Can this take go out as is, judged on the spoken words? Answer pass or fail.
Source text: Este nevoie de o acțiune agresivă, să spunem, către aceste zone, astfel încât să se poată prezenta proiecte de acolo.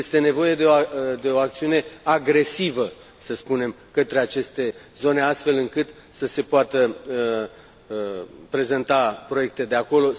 pass